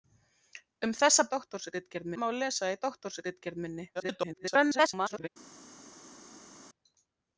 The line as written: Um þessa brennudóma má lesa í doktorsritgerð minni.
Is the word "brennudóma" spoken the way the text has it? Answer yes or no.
no